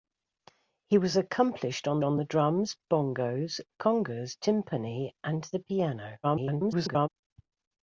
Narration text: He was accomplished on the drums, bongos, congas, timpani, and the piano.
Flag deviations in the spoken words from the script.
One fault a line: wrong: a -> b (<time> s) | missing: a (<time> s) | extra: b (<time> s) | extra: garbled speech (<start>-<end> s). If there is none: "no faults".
extra: on (2.0 s)
extra: garbled speech (6.2-7.1 s)